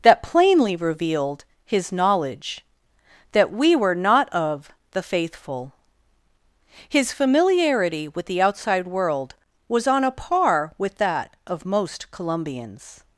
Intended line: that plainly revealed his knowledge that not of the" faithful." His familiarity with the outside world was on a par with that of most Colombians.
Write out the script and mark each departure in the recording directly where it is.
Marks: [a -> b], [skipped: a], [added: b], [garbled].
that plainly revealed his knowledge that [added: we were] not of the" faithful." His familiarity with the outside world was on a par with that of most Colombians.